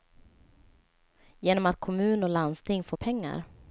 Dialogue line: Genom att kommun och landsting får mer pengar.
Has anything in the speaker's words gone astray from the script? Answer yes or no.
yes